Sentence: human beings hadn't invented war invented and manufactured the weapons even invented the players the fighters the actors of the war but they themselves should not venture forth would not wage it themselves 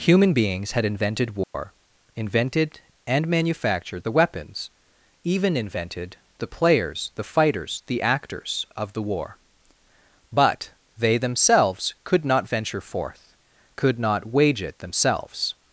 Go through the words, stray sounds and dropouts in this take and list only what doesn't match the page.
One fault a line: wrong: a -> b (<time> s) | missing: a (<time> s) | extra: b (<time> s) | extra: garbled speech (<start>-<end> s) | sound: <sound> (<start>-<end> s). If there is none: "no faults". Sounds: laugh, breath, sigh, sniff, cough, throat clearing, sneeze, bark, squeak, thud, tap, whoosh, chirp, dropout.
wrong: hadn't -> had (0.7 s)
sound: dropout (1.4-1.5 s)
wrong: should -> could (12.0 s)
wrong: would -> could (13.7 s)